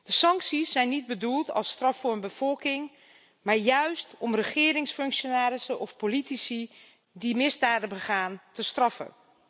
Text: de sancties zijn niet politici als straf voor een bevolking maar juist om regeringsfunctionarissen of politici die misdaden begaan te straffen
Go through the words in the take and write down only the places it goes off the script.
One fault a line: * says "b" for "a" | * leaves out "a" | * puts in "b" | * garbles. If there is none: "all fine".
* says "bedoeld" for "politici"